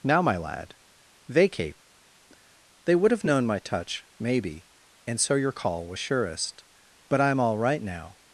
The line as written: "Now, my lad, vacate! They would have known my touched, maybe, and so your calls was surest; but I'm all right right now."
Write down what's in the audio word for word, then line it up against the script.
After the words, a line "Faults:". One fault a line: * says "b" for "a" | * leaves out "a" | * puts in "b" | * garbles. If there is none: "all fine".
"Now, my lad, vacate! They would have known my touch, maybe, and so your call was surest; but I'm all right now."
Faults:
* says "touch" for "touched"
* says "call" for "calls"
* leaves out "right"